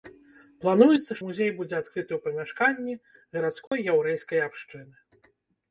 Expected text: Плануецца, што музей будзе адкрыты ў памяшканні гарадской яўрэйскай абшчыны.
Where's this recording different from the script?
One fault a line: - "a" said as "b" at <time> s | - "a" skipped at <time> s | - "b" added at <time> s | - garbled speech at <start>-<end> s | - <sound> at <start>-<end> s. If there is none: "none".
- "што" skipped at 1.2 s
- dropout at 3.7-3.7 s